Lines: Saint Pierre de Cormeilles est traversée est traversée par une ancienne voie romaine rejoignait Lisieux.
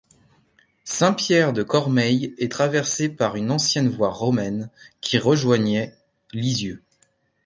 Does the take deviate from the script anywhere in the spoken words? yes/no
yes